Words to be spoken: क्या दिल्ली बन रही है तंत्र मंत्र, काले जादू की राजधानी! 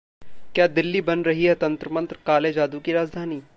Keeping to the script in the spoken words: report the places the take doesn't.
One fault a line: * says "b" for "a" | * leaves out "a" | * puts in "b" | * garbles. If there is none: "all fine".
all fine